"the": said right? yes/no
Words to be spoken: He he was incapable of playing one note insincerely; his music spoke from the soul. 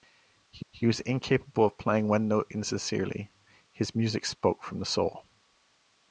yes